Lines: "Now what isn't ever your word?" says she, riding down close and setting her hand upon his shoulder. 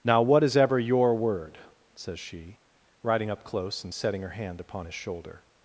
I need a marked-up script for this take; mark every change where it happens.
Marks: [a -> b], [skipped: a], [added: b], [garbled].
"Now what [isn't -> is] ever your word?" says she, riding [down -> up] close and setting her hand upon his shoulder.